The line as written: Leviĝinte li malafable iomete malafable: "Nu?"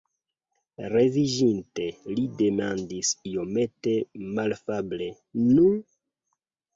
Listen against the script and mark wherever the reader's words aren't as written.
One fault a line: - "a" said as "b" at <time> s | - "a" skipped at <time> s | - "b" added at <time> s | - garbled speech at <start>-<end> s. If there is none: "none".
- "malafable" said as "demandis" at 2.4 s